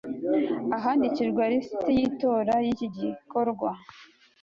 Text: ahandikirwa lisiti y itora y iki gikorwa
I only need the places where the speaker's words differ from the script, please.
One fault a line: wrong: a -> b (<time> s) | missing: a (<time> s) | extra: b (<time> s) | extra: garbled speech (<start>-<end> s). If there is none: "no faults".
no faults